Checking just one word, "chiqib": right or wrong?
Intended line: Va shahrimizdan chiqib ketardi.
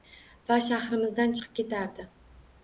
right